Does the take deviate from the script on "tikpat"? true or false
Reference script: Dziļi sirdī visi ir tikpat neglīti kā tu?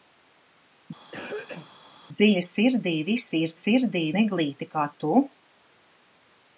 true